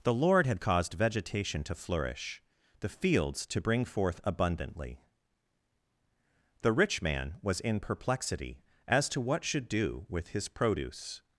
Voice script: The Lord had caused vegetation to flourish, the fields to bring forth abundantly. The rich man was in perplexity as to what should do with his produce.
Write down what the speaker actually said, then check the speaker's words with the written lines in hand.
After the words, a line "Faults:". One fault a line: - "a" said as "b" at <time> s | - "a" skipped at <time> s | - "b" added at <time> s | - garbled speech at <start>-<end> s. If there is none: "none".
The Lord had caused vegetation to flourish, the fields to bring forth abundantly. The rich man was in perplexity as to what should do with his produce.
Faults:
none